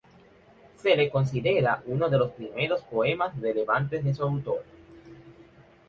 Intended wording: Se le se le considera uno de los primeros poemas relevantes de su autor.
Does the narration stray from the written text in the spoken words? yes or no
yes